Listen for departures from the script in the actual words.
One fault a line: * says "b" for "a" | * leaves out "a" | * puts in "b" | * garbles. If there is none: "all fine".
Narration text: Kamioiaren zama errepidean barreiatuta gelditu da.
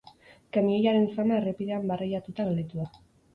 all fine